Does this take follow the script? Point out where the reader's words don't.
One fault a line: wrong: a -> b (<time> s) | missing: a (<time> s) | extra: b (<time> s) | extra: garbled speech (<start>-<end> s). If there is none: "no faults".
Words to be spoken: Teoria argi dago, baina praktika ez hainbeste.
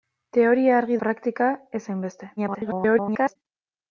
missing: dago baina (1.0 s)
extra: garbled speech (2.4-3.4 s)